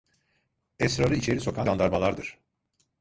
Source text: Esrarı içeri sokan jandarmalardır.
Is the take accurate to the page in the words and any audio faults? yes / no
yes